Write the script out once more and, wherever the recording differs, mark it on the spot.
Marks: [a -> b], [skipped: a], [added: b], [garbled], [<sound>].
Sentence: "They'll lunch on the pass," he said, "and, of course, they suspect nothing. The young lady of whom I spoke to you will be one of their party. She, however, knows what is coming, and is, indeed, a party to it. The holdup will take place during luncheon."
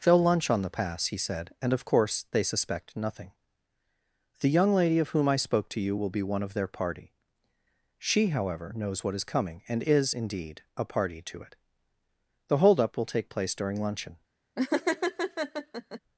"They'll lunch on the pass," he said, "and, of course, they suspect nothing. The young lady of whom I spoke to you will be one of their party. She, however, knows what is coming, and is, indeed, a party to it. The holdup will take place during luncheon." [laugh]